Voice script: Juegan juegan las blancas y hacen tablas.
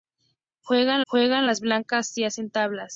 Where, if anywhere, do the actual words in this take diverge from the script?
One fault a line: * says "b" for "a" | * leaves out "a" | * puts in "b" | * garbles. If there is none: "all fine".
all fine